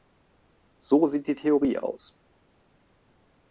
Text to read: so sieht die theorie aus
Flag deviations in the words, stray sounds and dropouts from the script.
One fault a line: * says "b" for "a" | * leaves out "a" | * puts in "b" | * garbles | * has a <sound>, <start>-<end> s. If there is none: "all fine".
all fine